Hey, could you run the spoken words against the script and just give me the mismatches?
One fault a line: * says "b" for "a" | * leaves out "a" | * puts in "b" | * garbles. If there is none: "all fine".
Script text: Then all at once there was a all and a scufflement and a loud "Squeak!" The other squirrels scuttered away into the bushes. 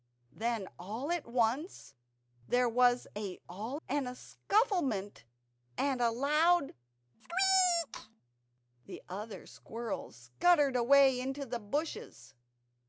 all fine